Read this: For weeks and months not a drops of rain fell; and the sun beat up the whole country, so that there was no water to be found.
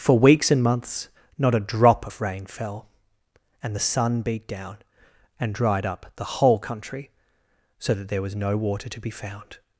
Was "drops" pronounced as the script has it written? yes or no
no